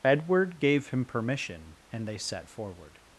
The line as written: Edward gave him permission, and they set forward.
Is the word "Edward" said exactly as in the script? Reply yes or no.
yes